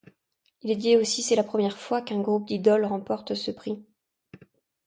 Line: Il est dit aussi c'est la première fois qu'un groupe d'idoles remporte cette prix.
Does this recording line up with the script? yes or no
no